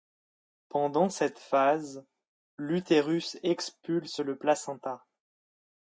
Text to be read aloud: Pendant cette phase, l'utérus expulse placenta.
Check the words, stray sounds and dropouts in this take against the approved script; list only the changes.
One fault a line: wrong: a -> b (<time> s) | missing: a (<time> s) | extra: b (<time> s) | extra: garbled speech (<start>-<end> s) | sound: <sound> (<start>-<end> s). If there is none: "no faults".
extra: le (4.2 s)